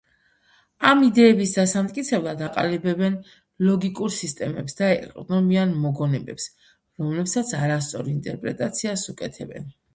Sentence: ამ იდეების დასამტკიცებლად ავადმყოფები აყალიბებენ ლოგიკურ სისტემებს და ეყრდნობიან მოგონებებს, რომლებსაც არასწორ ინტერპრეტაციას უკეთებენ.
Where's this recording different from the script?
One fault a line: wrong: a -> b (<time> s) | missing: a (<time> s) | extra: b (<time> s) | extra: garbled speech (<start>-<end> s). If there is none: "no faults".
missing: ავადმყოფები (2.4 s)